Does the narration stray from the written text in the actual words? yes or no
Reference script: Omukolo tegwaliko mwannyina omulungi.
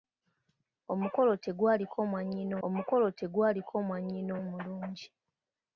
yes